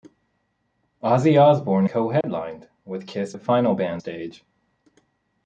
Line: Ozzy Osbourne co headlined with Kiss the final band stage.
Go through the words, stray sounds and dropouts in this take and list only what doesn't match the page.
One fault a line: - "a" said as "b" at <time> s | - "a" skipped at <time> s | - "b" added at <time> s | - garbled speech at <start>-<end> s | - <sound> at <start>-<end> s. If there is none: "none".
- dropout at 2.2-2.2 s